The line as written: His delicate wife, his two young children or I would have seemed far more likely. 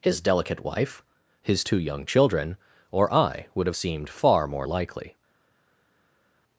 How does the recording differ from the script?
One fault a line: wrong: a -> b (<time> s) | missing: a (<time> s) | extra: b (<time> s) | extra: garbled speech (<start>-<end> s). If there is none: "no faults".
no faults